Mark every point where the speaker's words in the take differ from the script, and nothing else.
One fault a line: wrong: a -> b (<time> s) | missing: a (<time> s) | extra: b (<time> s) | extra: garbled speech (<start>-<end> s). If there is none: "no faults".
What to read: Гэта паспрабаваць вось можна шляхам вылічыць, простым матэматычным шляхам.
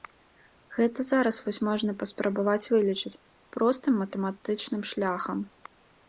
wrong: паспрабаваць -> зараз (1.1 s)
wrong: шляхам -> паспрабаваць (2.0 s)